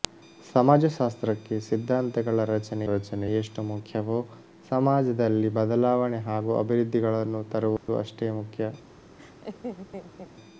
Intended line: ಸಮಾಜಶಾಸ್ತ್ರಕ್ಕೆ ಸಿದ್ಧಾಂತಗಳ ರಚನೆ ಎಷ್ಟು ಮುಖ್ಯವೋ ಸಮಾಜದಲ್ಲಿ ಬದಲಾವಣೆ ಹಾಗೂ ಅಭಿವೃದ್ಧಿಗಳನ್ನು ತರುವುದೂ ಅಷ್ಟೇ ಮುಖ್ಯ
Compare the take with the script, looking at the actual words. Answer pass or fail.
fail